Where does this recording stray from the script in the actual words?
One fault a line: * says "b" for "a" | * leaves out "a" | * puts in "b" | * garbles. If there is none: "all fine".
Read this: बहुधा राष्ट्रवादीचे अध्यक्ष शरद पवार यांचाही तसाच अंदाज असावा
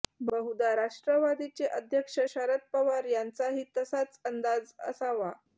all fine